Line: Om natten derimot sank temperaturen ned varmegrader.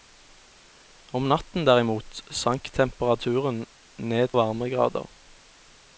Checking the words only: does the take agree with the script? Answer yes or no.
yes